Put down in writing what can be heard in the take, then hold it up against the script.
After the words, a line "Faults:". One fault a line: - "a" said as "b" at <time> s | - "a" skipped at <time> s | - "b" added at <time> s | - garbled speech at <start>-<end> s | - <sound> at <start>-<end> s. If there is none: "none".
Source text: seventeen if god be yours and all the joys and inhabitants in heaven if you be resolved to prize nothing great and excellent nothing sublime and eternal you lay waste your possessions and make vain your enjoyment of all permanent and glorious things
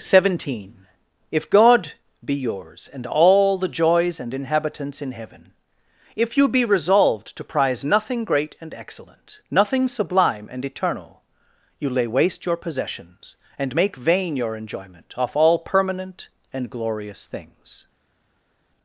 seventeen if god be yours and all the joys and inhabitants in heaven if you be resolved to prize nothing great and excellent nothing sublime and eternal you lay waste your possessions and make vain your enjoyment off all permanent and glorious things
Faults:
- "of" said as "off" at 15.2 s